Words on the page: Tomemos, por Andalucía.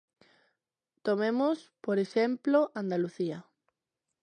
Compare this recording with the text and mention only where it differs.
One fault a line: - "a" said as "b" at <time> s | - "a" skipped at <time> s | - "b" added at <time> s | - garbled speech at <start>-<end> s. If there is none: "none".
- "exemplo" added at 2.0 s